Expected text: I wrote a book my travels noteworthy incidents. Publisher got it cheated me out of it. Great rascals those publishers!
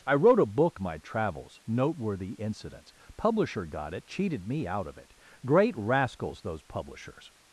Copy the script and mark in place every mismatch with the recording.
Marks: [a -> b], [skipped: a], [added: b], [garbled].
I wrote a book my travels noteworthy incidents. Publisher got it cheated me out of it. Great rascals those publishers!